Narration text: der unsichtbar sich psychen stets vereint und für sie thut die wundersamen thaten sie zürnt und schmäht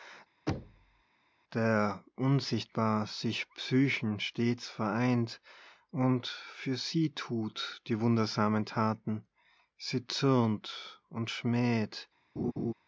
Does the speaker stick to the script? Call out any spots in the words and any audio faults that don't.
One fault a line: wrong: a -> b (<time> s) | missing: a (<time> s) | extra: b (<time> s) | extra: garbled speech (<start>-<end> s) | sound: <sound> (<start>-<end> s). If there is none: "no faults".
sound: thud (0.5-1.0 s)
sound: laugh (12.4-12.7 s)